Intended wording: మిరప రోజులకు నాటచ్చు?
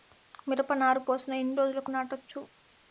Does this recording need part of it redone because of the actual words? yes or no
yes